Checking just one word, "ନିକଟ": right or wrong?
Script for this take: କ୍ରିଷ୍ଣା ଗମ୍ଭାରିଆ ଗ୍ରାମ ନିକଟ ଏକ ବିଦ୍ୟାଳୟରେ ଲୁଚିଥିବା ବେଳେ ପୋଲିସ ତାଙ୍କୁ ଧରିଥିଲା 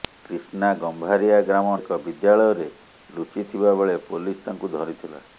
wrong